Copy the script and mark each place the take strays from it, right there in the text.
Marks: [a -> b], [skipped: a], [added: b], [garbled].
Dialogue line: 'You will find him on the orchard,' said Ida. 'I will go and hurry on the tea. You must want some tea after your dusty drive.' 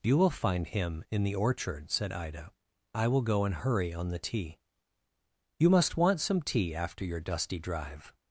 'You will find him [on -> in] the orchard,' said Ida. 'I will go and hurry on the tea. You must want some tea after your dusty drive.'